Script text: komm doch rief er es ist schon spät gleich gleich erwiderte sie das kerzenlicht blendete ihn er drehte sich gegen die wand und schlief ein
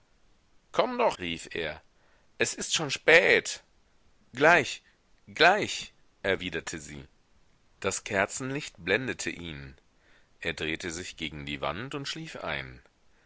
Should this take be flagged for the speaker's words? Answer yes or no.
no